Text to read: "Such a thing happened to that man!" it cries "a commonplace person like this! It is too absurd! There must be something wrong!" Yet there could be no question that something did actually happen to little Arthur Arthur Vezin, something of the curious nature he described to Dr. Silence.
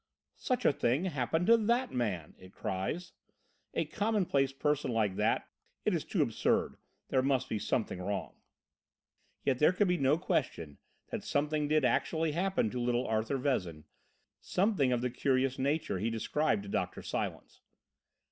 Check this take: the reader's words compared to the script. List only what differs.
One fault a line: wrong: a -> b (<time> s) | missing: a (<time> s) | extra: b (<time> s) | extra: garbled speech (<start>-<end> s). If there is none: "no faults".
wrong: this -> that (5.2 s)
missing: Arthur (13.4 s)